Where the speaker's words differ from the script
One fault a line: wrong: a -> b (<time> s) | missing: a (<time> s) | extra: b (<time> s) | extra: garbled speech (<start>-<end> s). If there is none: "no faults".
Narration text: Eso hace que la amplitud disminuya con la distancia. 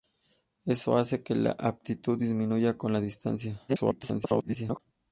extra: garbled speech (3.7-4.8 s)